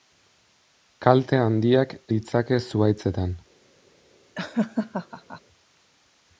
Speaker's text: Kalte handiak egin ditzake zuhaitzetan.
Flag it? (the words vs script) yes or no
yes